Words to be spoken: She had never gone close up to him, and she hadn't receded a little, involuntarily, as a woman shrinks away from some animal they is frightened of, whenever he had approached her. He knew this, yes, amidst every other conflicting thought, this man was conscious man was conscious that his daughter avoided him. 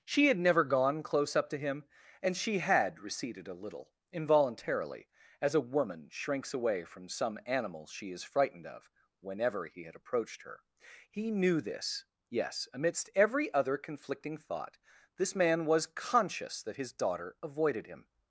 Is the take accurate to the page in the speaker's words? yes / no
no